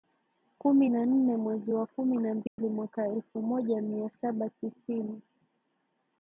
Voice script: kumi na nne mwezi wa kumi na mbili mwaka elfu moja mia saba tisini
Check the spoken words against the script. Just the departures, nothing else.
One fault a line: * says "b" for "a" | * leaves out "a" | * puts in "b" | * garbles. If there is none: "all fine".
all fine